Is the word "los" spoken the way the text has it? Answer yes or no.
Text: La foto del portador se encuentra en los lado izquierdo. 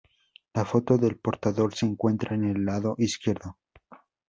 no